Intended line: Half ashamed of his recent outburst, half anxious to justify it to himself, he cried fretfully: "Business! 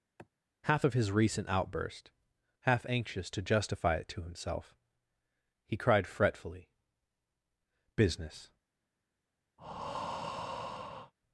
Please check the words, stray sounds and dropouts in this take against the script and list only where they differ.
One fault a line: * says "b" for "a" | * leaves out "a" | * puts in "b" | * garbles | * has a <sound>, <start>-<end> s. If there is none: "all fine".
* has a sigh, 0.2-0.3 s
* leaves out "ashamed"
* has a breath, 9.6-11.1 s